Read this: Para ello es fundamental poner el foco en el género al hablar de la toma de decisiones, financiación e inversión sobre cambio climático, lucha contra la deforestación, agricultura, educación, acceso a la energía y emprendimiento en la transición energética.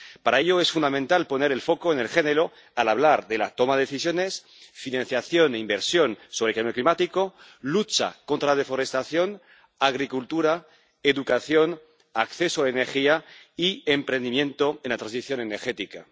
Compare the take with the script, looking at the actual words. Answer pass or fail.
pass